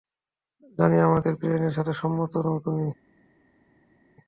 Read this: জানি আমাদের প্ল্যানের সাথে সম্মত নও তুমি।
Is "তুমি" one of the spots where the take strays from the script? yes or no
no